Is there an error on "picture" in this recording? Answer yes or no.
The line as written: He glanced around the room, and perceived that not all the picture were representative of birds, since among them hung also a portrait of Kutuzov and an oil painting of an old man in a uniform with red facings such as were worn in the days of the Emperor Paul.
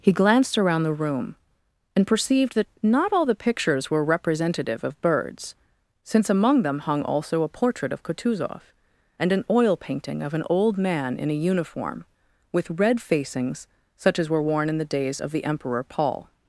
yes